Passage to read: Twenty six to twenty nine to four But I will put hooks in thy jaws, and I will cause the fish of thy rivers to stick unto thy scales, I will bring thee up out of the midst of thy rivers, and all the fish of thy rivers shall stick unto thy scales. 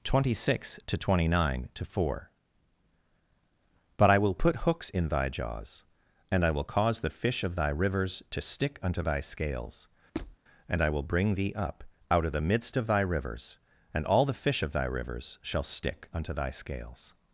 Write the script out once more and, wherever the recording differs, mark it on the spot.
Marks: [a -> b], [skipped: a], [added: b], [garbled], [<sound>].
Twenty six to twenty nine to four But I will put hooks in thy jaws, and I will cause the fish of thy rivers to stick unto thy scales, [squeak] [added: and] I will bring thee up out of the midst of thy rivers, and all the fish of thy rivers shall stick unto thy scales.